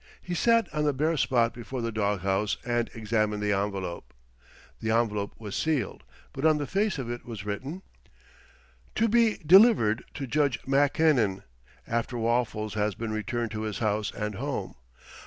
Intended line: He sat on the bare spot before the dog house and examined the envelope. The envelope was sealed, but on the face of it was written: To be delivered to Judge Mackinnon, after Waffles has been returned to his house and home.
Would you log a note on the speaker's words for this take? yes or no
no